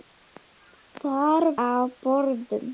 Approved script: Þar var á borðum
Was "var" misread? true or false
true